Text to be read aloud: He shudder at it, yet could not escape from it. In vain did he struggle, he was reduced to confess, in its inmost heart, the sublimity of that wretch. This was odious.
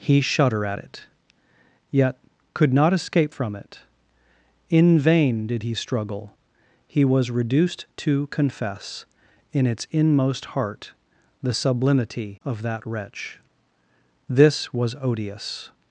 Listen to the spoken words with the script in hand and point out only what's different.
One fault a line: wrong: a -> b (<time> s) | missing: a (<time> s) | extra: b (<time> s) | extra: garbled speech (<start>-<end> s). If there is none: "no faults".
no faults